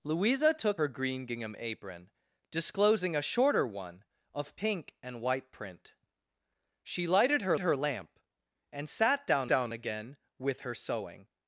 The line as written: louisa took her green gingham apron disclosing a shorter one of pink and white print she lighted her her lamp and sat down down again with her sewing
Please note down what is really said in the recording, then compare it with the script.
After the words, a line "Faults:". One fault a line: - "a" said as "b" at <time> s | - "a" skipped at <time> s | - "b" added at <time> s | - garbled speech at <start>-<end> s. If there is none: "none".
louisa took her green gingham apron disclosing a shorter one of pink and white print she lighted her her lamp and sat down down again with her sewing
Faults:
none